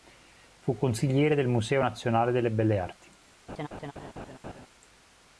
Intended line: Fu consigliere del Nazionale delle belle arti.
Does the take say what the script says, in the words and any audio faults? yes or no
no